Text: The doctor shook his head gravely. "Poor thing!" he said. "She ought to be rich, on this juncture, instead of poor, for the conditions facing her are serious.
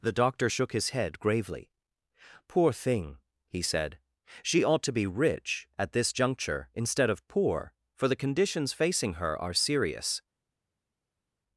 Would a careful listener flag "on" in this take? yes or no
yes